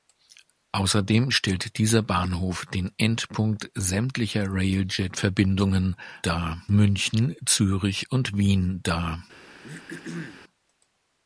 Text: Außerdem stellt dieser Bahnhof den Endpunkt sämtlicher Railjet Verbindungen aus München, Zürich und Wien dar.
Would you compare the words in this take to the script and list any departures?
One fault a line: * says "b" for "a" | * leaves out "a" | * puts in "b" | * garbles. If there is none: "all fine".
* says "dar" for "aus"